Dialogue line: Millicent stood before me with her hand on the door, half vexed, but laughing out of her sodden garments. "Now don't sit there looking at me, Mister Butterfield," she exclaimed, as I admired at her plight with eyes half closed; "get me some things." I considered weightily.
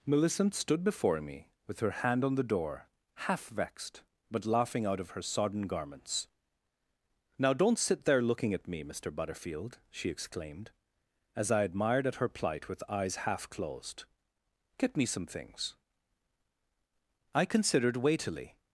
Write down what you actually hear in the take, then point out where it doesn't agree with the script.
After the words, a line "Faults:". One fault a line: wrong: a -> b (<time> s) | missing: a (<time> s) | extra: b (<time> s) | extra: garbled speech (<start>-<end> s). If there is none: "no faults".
Millicent stood before me with her hand on the door, half vexed, but laughing out of her sodden garments. "Now don't sit there looking at me, Mister Butterfield," she exclaimed, as I admired at her plight with eyes half closed; "get me some things." I considered weightily.
Faults:
no faults